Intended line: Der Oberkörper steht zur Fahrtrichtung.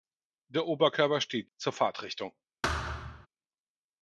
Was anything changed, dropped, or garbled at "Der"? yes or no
no